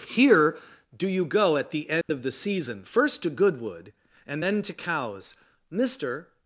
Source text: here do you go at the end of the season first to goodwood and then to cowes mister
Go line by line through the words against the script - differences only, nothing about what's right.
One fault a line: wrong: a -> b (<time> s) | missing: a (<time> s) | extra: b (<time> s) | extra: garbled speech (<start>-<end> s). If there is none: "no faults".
no faults